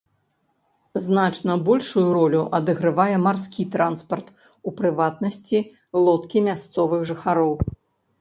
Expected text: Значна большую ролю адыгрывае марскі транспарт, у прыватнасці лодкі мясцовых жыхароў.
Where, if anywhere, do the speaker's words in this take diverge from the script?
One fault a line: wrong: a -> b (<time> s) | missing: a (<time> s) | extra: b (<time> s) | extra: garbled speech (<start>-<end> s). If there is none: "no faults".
no faults